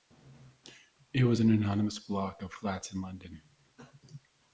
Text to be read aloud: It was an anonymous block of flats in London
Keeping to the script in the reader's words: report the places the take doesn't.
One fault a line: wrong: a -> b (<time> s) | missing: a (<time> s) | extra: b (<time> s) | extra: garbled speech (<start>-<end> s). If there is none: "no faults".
no faults